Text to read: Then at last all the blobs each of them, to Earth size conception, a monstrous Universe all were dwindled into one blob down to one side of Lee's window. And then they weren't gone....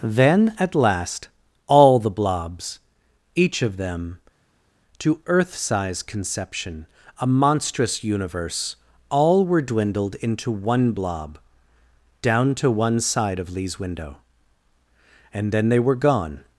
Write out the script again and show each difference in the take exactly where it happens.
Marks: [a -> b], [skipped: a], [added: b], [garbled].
Then at last all the blobs each of them, to Earth size conception, a monstrous Universe all were dwindled into one blob down to one side of Lee's window. And then they [weren't -> were] gone....